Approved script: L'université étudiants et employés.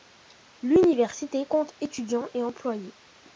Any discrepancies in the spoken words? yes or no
yes